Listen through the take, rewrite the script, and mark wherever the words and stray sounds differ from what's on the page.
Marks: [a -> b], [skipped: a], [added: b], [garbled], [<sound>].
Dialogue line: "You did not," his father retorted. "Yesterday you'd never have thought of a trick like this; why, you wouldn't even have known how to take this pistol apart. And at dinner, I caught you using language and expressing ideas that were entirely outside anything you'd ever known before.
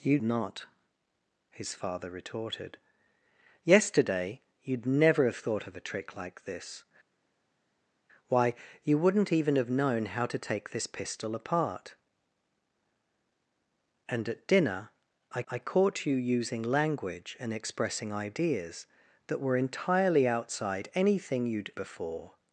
"You [skipped: did] not," his father retorted. "Yesterday you'd never have thought of a trick like this; why, you wouldn't even have known how to take this pistol apart. And at dinner, I [added: I] caught you using language and expressing ideas that were entirely outside anything you'd [skipped: ever known] before.